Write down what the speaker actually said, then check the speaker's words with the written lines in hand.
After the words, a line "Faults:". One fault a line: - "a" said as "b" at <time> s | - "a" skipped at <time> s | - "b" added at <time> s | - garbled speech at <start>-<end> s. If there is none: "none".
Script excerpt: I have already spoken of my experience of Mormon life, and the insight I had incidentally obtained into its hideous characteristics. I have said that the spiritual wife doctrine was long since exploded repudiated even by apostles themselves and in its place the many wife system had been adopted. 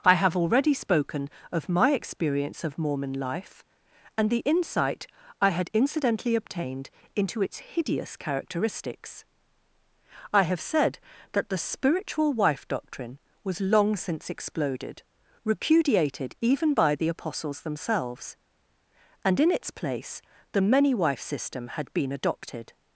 I have already spoken of my experience of Mormon life, and the insight I had incidentally obtained into its hideous characteristics. I have said that the spiritual wife doctrine was long since exploded repudiated even by the apostles themselves and in its place the many wife system had been adopted.
Faults:
- "the" added at 16.9 s